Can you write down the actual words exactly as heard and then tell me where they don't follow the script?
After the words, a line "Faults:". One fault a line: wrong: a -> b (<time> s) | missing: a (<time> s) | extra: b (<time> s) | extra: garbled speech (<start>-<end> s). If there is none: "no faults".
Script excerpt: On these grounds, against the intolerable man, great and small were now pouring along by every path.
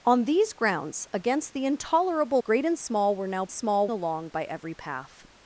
On these grounds, against the intolerable great and small were now small along by every path.
Faults:
missing: man (2.4 s)
wrong: pouring -> small (3.5 s)